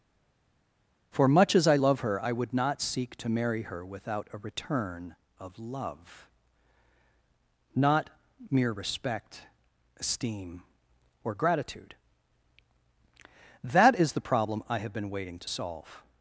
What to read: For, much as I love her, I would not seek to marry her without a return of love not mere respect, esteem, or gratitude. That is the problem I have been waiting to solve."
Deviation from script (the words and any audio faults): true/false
false